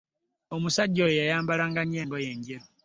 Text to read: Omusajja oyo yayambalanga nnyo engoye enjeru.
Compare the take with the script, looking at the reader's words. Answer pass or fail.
pass